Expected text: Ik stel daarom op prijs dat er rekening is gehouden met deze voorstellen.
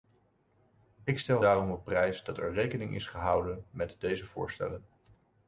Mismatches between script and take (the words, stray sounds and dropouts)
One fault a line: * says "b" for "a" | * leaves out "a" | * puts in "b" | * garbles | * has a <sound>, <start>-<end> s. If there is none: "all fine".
all fine